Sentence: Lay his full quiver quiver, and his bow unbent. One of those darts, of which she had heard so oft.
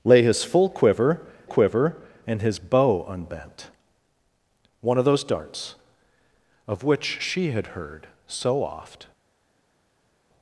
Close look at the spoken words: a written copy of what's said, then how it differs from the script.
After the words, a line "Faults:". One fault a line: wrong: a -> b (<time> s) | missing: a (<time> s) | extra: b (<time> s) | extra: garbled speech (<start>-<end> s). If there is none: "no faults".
Lay his full quiver quiver, and his bow unbent. One of those darts, of which she had heard so oft.
Faults:
no faults